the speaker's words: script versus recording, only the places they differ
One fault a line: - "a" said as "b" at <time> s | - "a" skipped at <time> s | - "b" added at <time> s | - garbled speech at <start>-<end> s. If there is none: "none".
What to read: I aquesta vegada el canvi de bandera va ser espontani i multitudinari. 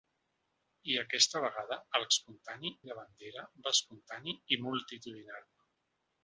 - "canvi" said as "espontani" at 2.1 s
- "ser" skipped at 3.7 s